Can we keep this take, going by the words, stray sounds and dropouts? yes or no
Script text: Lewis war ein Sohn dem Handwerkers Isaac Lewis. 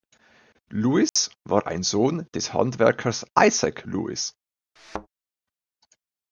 no